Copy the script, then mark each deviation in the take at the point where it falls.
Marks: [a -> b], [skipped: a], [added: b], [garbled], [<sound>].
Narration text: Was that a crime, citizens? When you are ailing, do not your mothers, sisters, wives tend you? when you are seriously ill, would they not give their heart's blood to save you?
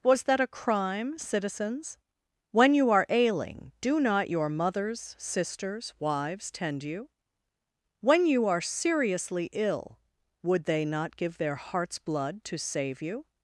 Was that a crime, citizens? When you are ailing, do not your mothers, sisters, wives tend you? when you are seriously ill, would they not give their heart's blood to save you?